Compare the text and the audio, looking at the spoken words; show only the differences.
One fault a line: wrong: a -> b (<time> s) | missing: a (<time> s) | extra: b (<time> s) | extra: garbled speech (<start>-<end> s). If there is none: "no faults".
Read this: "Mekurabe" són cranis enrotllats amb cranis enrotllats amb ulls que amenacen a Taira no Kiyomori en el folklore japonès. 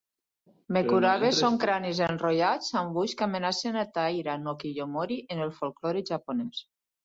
missing: cranis enrotllats amb (3.0 s)